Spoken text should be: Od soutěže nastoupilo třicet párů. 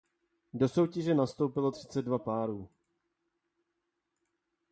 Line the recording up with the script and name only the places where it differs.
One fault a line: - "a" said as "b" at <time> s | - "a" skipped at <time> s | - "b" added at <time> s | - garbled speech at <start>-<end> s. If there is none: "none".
- "Od" said as "Do" at 0.5 s
- "dva" added at 2.0 s